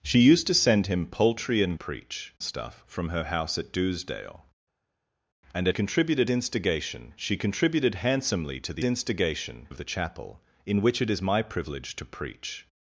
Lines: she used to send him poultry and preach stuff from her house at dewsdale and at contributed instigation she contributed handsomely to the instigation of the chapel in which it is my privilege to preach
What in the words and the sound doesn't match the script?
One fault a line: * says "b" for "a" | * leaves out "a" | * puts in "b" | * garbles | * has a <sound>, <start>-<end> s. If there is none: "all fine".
all fine